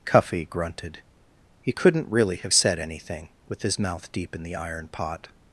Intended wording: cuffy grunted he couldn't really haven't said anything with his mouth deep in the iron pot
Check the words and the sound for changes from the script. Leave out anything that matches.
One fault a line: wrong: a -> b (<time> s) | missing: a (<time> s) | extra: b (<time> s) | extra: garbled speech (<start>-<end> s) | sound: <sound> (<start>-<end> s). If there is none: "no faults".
wrong: haven't -> have (2.4 s)